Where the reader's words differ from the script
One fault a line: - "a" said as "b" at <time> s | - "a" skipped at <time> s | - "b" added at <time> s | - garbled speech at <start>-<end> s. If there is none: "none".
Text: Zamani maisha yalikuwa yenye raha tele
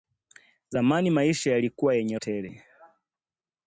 - "raha" skipped at 2.2 s